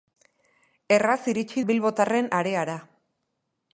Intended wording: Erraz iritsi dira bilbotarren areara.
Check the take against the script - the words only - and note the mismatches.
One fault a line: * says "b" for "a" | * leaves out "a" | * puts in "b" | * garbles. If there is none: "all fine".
* leaves out "dira"